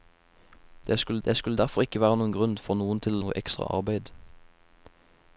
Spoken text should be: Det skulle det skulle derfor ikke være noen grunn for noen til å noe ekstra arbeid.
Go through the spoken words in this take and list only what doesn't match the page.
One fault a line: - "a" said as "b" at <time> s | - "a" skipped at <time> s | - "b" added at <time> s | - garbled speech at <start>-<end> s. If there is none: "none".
none